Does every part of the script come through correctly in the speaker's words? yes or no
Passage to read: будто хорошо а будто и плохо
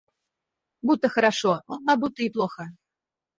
yes